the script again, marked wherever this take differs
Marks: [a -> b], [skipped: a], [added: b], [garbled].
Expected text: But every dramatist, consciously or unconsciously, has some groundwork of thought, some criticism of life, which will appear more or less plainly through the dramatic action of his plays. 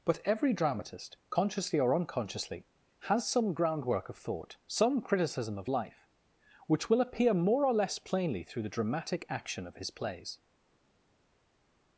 But every dramatist, consciously or unconsciously, has some groundwork of thought, some criticism of life, which will appear more or less plainly through the dramatic action of his plays.